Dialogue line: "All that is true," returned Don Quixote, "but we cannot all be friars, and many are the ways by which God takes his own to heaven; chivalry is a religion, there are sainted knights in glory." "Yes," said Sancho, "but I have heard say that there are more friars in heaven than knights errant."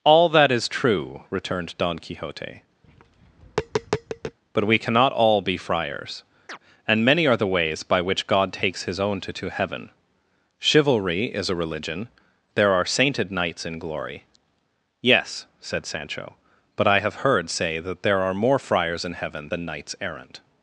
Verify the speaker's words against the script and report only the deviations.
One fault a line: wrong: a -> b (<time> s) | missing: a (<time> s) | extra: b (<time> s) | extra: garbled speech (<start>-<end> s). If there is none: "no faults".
extra: to (9.3 s)